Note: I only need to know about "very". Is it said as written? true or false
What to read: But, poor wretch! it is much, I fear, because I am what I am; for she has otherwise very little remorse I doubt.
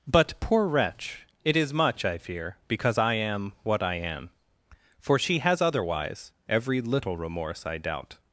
false